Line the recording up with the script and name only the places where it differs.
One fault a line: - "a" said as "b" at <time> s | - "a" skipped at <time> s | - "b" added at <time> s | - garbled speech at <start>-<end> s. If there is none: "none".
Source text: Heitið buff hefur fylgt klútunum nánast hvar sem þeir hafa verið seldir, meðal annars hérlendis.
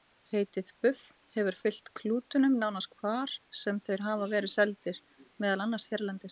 none